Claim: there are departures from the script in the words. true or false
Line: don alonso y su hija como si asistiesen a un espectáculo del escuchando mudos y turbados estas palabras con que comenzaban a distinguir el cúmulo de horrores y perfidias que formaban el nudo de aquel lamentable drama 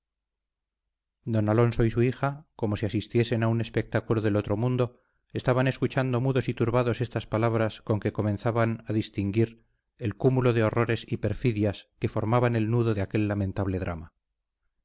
true